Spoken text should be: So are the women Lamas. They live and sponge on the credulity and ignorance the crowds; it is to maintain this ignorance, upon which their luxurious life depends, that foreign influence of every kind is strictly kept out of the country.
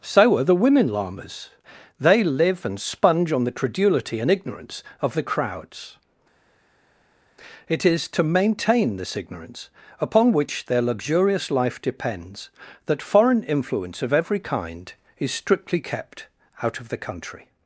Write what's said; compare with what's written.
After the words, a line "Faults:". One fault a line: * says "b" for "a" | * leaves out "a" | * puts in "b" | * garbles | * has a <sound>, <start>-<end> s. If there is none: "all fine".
So are the women Lamas. They live and sponge on the credulity and ignorance of the crowds; it is to maintain this ignorance, upon which their luxurious life depends, that foreign influence of every kind is strictly kept out of the country.
Faults:
* puts in "of"